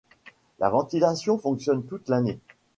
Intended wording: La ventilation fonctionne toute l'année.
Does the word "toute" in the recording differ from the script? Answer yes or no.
no